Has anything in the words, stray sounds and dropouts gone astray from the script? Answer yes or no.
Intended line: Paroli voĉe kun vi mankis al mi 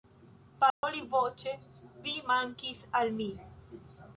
yes